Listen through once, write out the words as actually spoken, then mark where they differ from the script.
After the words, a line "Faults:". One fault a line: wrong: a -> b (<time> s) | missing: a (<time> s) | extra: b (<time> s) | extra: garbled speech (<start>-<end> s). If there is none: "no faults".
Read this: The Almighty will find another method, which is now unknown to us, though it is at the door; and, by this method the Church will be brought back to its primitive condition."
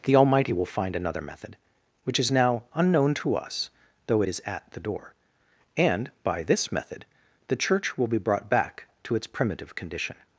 The Almighty will find another method, which is now unknown to us, though it is at the door; and, by this method the Church will be brought back to its primitive condition."
Faults:
no faults